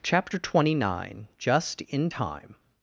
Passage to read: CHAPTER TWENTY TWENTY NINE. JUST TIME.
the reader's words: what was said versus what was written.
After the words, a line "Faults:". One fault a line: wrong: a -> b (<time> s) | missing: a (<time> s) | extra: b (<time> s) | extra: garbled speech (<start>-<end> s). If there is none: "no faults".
CHAPTER TWENTY NINE. JUST IN TIME.
Faults:
missing: TWENTY (0.7 s)
extra: IN (1.8 s)